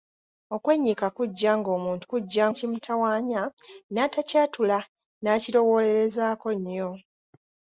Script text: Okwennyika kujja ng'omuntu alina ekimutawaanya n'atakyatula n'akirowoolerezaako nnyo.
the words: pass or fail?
fail